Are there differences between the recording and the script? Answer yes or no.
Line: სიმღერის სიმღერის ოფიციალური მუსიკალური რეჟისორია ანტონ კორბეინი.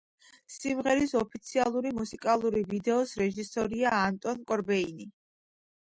yes